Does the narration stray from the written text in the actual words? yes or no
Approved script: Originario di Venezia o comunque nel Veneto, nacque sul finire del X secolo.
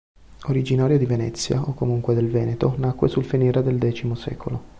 yes